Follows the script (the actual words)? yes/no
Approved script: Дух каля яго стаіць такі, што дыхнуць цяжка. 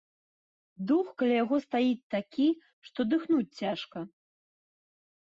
yes